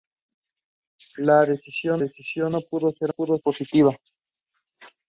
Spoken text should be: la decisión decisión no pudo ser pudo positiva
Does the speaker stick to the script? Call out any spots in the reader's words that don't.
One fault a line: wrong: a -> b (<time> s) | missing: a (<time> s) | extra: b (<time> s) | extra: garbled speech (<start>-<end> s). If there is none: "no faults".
no faults